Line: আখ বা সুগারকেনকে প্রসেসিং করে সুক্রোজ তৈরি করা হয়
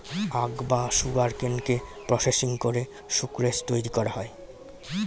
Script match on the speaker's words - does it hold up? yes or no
yes